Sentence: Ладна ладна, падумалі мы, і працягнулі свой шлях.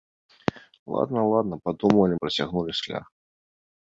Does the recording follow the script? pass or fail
fail